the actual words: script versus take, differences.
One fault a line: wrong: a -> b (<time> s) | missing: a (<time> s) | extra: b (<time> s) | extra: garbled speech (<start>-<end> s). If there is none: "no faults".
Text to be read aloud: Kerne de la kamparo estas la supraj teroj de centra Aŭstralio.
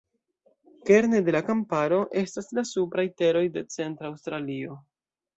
no faults